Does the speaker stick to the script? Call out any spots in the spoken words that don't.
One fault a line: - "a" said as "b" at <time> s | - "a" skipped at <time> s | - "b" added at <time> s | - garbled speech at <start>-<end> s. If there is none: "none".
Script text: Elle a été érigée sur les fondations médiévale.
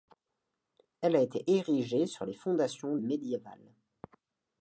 none